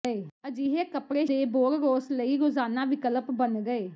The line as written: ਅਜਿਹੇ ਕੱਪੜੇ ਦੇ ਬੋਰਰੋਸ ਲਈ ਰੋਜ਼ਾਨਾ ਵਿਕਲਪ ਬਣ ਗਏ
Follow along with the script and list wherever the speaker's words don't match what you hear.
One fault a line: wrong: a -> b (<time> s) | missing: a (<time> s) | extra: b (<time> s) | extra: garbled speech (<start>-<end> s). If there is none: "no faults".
no faults